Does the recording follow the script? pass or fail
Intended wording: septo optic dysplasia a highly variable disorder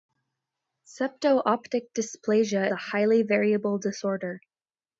pass